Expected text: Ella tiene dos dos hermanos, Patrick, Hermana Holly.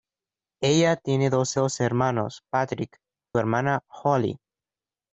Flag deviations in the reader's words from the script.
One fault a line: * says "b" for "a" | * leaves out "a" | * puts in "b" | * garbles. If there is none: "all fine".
all fine